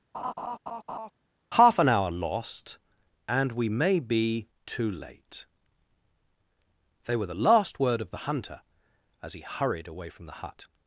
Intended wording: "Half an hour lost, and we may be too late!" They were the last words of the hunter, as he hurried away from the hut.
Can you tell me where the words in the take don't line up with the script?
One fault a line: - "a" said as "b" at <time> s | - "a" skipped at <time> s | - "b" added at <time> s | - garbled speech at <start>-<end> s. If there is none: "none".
- "words" said as "word" at 7.8 s